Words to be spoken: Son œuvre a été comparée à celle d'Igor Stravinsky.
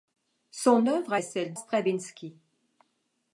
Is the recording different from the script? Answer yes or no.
yes